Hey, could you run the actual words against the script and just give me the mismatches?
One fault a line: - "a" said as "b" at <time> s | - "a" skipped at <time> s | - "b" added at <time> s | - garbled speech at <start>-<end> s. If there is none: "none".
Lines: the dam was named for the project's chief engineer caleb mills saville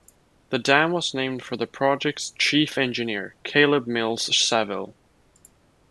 none